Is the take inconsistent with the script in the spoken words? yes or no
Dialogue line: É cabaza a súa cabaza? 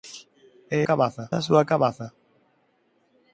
no